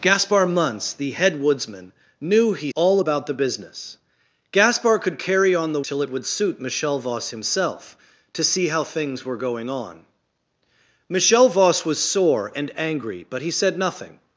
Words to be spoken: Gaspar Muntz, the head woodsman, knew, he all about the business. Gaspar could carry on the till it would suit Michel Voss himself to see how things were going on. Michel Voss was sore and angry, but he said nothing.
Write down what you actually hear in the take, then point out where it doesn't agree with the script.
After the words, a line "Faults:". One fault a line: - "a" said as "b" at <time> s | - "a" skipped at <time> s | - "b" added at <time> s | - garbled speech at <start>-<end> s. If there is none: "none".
Gaspar Muntz, the head woodsman, knew, he all about the business. Gaspar could carry on the till it would suit Michel Voss himself to see how things were going on. Michel Voss was sore and angry, but he said nothing.
Faults:
none